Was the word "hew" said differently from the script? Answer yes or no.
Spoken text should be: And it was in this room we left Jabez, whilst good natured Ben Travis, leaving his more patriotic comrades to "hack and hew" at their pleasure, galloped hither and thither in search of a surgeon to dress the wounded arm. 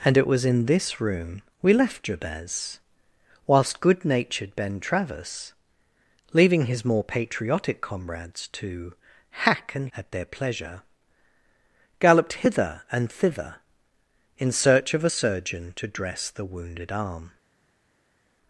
yes